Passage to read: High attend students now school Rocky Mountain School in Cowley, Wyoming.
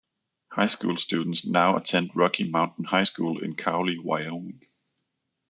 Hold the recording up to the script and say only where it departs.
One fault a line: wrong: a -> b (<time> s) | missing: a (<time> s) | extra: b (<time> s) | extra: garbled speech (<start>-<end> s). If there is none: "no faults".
wrong: attend -> school (0.7 s)
wrong: school -> attend (1.7 s)
extra: High (2.8 s)